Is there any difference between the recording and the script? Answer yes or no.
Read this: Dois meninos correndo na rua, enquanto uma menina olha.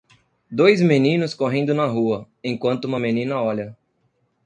no